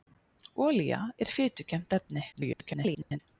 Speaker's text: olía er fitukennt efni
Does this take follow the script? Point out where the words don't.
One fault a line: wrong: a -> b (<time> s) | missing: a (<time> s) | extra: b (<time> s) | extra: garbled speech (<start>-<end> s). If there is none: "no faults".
extra: garbled speech (2.3-3.2 s)